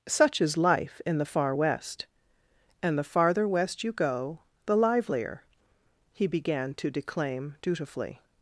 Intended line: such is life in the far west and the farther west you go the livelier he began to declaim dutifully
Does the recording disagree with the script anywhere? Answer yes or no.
no